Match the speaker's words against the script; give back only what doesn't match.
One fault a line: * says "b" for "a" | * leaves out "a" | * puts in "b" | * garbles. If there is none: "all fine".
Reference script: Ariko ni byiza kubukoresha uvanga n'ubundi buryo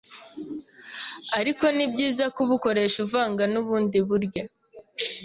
all fine